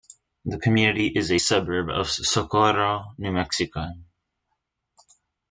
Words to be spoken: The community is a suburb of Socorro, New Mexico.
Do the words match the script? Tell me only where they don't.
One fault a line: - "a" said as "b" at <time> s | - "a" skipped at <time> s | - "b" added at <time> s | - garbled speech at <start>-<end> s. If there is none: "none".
none